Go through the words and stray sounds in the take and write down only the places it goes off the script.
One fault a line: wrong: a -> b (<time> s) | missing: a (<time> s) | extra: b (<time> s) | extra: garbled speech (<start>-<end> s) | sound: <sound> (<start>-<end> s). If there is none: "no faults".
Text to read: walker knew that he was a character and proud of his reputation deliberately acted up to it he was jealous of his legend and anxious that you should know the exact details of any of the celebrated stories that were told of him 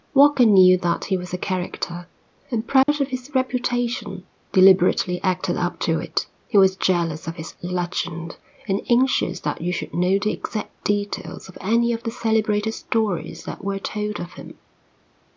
sound: dropout (2.8-2.9 s)